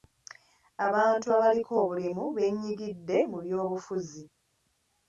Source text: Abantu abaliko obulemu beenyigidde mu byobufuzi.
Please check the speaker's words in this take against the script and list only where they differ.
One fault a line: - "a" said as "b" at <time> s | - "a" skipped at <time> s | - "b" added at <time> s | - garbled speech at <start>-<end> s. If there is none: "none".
none